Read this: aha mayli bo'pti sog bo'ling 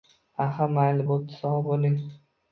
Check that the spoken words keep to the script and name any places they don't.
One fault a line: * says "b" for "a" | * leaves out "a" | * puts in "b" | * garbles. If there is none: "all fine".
all fine